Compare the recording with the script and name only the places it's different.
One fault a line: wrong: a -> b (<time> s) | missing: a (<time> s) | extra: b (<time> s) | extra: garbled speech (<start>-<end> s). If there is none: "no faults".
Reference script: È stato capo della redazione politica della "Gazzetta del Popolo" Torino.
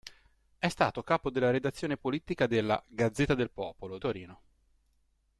no faults